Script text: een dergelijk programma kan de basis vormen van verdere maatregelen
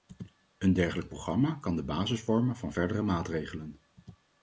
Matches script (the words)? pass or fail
pass